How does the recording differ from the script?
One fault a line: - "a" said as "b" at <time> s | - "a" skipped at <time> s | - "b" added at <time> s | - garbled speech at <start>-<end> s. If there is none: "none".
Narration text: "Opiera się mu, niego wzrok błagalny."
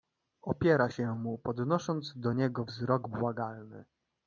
- "podnosząc do" added at 1.4 s